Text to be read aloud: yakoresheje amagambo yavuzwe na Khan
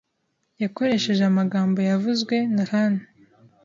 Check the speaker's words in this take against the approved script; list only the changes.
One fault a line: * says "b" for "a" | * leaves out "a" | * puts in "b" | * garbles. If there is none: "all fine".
all fine